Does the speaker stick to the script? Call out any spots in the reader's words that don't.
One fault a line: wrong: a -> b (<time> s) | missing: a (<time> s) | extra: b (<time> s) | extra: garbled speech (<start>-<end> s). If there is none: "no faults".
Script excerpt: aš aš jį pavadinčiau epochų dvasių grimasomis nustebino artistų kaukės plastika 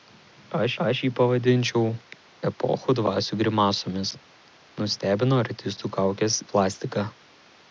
no faults